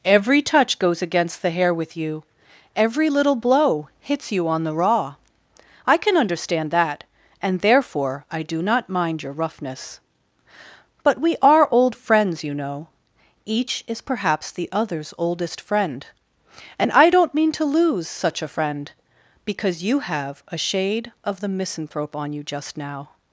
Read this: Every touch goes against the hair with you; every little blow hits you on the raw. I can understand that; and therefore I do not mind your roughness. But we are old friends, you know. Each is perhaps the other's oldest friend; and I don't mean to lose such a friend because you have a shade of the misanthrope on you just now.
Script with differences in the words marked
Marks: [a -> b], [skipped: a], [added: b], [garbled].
Every touch goes against the hair with you; every little blow hits you on the raw. I can understand that; and therefore I do not mind your roughness. But we are old friends, you know. Each is perhaps the other's oldest friend; and I don't mean to lose such a friend because you have a shade of the misanthrope on you just now.